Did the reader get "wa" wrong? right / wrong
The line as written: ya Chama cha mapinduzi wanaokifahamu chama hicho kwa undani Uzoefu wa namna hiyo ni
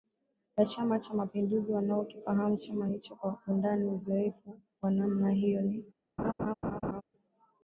right